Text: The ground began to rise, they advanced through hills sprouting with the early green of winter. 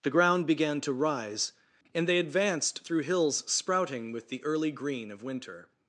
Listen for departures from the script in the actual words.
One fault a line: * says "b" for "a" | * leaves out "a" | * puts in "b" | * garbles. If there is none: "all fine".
* puts in "and"